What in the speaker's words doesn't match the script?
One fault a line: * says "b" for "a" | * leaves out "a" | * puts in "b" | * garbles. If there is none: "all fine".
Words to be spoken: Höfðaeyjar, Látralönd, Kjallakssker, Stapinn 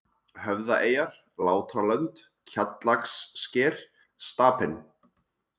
all fine